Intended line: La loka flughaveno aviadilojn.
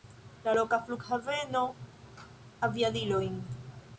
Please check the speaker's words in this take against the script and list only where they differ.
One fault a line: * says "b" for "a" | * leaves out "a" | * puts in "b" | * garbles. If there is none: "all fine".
all fine